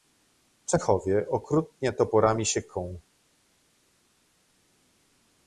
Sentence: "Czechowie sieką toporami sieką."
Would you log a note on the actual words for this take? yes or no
yes